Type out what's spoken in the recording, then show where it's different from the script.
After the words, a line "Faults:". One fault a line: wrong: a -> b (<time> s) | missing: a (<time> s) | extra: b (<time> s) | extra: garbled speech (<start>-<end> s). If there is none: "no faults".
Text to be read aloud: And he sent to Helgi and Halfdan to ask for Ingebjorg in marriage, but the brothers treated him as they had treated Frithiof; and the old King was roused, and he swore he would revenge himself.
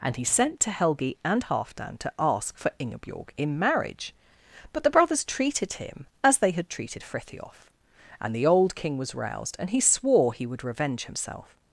And he sent to Helgi and Halfdan to ask for Ingebjorg in marriage, but the brothers treated him as they had treated Frithiof; and the old King was roused, and he swore he would revenge himself.
Faults:
no faults